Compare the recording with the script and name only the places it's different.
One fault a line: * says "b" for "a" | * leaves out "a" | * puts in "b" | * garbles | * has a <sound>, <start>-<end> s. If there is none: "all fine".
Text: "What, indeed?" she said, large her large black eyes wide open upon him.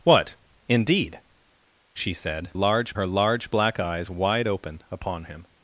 all fine